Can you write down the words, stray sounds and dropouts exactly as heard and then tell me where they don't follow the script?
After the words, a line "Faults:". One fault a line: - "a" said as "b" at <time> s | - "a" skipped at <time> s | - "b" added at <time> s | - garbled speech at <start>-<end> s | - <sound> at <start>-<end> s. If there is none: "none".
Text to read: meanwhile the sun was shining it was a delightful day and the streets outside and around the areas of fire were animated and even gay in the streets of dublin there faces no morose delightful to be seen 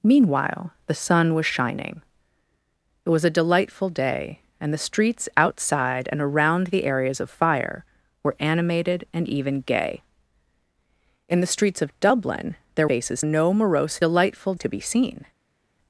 meanwhile the sun was shining it was a delightful day and the streets outside and around the areas of fire were animated and even gay in the streets of dublin there faces no morose delightful to be seen
Faults:
none